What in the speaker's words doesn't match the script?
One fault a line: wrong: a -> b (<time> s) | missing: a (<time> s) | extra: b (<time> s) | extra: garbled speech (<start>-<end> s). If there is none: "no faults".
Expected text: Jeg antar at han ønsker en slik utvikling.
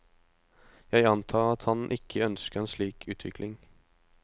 extra: ikke (2.0 s)